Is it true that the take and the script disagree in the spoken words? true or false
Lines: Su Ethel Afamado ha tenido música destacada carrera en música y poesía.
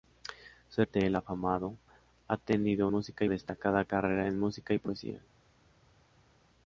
false